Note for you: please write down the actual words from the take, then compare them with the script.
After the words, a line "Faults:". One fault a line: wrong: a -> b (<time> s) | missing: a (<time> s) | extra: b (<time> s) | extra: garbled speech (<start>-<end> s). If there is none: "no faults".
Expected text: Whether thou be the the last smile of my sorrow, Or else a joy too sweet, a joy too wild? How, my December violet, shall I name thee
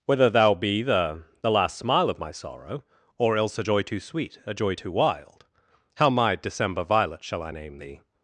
Whether thou be the the last smile of my sorrow, Or else a joy too sweet, a joy too wild? How, my December violet, shall I name thee
Faults:
no faults